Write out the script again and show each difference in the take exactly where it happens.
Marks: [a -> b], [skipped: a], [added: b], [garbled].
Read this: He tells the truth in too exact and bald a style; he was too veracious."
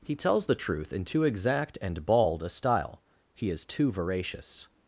He tells the truth in too exact and bald a style; he [was -> is] too veracious."